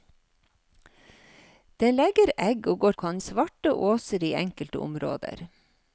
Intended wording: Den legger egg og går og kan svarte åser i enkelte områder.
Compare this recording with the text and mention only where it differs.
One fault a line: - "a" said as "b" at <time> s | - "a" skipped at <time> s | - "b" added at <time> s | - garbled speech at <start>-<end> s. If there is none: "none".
none